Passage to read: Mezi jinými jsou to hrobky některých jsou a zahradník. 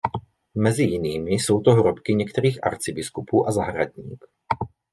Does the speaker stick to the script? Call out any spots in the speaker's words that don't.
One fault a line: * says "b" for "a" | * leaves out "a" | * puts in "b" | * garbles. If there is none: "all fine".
* says "arcibiskupů" for "jsou"